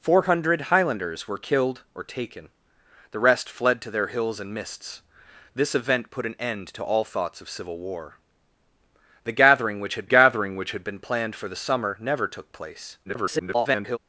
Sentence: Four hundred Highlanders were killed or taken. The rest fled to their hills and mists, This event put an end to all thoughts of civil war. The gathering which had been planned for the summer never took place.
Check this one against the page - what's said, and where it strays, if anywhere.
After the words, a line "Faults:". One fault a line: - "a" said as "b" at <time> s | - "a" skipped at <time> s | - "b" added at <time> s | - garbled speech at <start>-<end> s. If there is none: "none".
Four hundred Highlanders were killed or taken. The rest fled to their hills and mists, This event put an end to all thoughts of civil war. The gathering which had gathering which had been planned for the summer never took place. [garbled]
Faults:
- "gathering which had" added at 10.0 s
- garbled speech at 13.1-14.0 s